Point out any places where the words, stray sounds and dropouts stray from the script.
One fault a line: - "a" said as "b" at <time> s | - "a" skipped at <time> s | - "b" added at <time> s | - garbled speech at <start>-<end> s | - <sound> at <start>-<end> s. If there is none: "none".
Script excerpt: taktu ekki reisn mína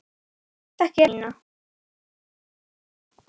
- "reisn" skipped at 1.1 s